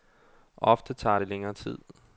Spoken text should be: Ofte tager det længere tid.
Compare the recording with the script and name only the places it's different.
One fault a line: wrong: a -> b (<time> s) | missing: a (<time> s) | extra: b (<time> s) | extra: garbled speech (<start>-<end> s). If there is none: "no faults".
no faults